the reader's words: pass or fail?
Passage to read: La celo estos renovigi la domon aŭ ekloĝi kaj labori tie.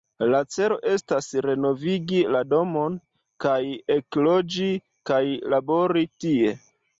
fail